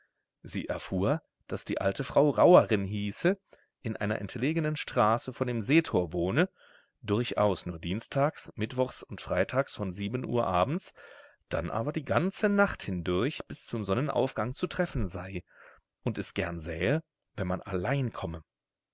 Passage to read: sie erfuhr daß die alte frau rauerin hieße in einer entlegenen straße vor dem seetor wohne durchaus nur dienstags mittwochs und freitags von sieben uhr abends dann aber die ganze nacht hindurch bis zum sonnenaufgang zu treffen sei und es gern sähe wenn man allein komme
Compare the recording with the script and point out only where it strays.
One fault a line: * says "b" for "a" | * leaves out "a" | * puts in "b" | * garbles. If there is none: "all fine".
all fine